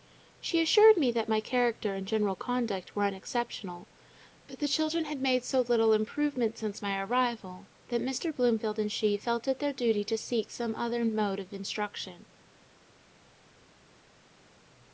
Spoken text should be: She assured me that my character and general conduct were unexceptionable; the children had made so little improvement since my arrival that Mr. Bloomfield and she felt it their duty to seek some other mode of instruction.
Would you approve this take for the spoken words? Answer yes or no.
no